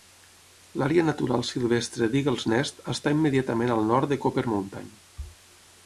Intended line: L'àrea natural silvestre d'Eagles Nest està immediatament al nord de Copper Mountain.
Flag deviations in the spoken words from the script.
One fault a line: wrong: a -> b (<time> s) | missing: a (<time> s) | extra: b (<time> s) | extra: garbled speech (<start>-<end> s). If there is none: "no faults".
no faults